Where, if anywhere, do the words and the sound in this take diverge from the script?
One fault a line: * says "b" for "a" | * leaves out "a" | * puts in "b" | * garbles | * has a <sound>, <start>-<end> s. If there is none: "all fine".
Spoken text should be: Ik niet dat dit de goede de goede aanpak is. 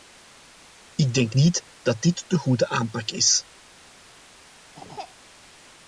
* puts in "denk"
* leaves out "de goede"
* has a throat clearing, 4.7-5.1 s